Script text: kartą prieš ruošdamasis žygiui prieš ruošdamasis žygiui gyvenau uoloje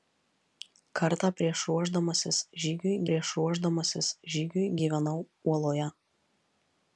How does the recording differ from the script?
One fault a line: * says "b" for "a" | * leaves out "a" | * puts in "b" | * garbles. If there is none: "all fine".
all fine